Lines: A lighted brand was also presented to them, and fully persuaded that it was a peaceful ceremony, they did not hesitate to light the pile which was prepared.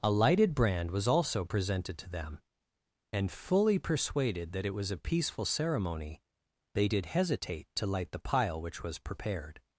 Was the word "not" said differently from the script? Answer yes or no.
yes